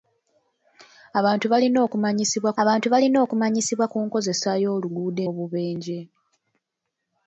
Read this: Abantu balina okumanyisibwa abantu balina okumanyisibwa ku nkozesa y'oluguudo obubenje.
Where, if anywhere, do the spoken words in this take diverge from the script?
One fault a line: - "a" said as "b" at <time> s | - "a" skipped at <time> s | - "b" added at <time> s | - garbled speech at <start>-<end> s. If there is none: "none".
none